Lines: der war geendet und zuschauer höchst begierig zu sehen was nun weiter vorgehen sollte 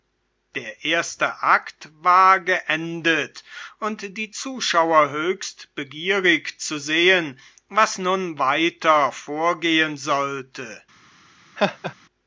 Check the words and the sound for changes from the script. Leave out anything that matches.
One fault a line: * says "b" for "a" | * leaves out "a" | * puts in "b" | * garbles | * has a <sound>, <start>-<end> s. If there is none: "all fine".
* puts in "erste akt"
* puts in "die"
* has a laugh, 11.6-11.9 s